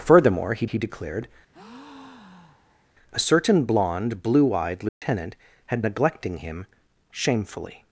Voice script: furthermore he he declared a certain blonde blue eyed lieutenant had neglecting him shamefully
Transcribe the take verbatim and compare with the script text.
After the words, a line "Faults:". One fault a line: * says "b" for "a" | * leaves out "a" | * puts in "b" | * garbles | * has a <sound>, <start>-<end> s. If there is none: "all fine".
furthermore he he declared a certain blonde blue eyed lieutenant had neglecting him shamefully
Faults:
* has a breath, 1.5-2.9 s
* has a dropout, 4.9-5.0 s